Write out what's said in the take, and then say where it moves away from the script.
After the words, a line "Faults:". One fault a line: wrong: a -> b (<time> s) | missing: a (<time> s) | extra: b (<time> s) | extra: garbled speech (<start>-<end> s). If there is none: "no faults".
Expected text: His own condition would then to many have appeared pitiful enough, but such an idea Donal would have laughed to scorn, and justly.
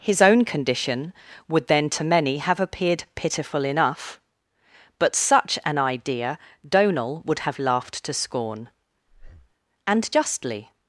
His own condition would then to many have appeared pitiful enough, but such an idea Donal would have laughed to scorn, and justly.
Faults:
no faults